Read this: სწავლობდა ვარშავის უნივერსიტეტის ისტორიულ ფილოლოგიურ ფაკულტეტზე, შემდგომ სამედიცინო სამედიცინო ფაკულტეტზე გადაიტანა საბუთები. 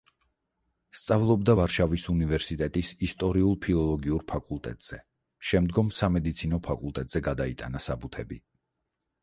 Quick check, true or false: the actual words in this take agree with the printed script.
false